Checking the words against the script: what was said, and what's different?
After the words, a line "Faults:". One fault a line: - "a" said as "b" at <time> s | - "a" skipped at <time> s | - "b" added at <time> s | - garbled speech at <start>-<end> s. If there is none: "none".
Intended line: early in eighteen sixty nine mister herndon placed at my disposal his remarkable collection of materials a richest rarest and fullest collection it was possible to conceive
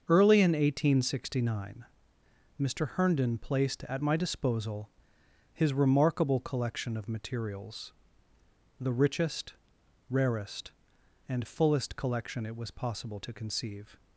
early in eighteen sixty nine mister herndon placed at my disposal his remarkable collection of materials the richest rarest and fullest collection it was possible to conceive
Faults:
- "a" said as "the" at 8.8 s